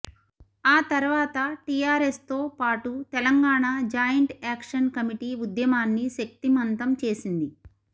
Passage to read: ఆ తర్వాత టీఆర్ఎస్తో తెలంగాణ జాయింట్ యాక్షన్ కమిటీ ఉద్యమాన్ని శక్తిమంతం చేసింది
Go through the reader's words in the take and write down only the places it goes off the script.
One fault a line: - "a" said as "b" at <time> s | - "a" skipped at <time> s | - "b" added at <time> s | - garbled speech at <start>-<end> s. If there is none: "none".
- "పాటు" added at 2.6 s